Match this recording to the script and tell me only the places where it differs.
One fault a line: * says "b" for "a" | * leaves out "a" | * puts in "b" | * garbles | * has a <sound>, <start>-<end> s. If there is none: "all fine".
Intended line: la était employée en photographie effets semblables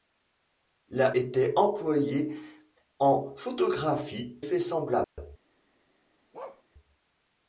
* has a dropout, 5.0-5.2 s
* has a bark, 6.3-6.6 s